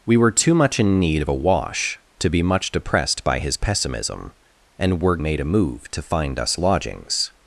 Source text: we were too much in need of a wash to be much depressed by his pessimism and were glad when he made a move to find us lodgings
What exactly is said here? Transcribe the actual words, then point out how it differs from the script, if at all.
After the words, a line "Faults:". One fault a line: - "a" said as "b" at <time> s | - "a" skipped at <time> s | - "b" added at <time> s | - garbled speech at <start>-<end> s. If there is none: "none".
we were too much in need of a wash to be much depressed by his pessimism and were made a move to find us lodgings
Faults:
- "glad when he" skipped at 5.2 s